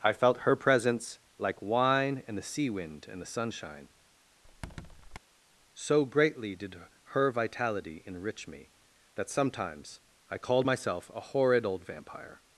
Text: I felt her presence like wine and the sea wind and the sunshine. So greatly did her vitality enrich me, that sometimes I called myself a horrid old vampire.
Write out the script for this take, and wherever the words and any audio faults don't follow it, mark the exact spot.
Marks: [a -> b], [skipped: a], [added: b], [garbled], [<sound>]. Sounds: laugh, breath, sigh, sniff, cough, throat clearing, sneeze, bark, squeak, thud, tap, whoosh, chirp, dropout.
I felt her presence like wine and the sea wind and the sunshine. [squeak] So greatly did her vitality enrich me, that sometimes I called myself a horrid old vampire.